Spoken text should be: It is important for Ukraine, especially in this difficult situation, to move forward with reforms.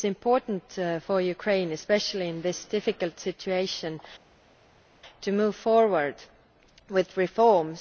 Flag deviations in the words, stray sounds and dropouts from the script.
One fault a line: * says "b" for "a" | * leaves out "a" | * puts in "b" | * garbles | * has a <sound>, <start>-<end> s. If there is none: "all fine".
all fine